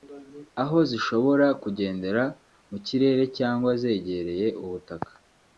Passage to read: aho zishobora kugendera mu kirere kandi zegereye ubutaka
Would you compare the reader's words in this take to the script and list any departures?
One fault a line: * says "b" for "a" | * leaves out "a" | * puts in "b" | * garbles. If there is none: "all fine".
* says "cyangwa" for "kandi"